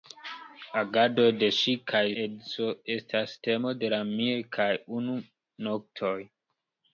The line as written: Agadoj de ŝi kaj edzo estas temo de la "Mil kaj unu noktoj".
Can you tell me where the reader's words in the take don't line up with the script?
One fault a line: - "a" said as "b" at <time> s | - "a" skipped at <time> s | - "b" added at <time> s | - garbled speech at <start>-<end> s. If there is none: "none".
none